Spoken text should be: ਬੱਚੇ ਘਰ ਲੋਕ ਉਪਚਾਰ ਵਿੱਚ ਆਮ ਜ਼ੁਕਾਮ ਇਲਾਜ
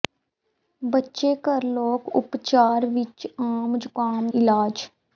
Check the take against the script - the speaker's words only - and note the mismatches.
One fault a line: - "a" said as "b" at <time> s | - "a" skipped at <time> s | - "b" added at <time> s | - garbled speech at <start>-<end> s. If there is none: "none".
none